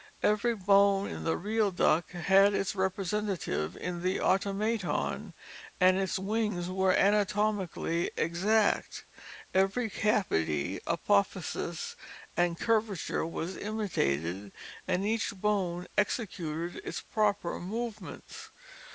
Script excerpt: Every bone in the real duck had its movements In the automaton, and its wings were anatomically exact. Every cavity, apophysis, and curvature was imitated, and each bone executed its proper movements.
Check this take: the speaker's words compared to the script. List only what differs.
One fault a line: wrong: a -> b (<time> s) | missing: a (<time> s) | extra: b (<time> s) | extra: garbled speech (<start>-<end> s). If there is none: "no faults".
wrong: movements -> representative (2.7 s)